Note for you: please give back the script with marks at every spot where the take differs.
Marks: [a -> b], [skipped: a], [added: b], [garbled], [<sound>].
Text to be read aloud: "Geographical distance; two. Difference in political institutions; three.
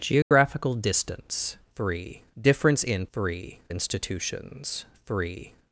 "Geographical [dropout] distance; [two. -> three] Difference in [political -> three] institutions; three.